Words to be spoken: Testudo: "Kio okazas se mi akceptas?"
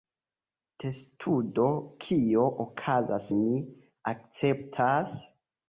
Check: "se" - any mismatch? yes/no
yes